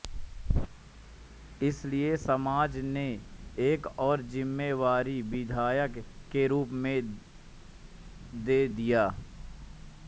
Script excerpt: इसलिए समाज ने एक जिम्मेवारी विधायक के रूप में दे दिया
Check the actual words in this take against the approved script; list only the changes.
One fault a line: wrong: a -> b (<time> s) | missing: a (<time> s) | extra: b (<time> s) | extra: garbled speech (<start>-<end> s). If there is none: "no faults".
extra: और (4.0 s)